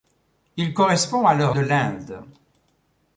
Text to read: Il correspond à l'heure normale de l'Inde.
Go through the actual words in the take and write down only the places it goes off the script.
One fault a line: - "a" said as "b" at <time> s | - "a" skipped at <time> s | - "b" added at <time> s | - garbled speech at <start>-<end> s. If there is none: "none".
- "normale" skipped at 1.6 s